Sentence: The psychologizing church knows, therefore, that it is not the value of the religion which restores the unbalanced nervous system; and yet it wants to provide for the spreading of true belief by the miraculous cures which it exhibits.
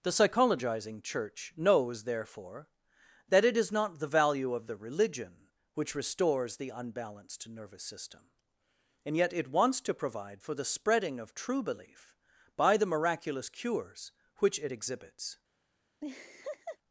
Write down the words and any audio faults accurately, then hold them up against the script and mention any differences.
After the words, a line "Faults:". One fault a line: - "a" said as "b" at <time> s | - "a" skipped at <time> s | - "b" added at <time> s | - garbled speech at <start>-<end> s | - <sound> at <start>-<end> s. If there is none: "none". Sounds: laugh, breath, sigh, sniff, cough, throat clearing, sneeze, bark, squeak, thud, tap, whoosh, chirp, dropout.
The psychologizing church knows, therefore, that it is not the value of the religion which restores the unbalanced nervous system; and yet it wants to provide for the spreading of true belief by the miraculous cures which it exhibits.
Faults:
- laugh at 16.0-16.8 s